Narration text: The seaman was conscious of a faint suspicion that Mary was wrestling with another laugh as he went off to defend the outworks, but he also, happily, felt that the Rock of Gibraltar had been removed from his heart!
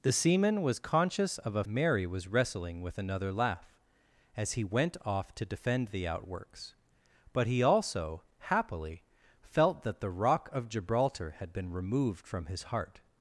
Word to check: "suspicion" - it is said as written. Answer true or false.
false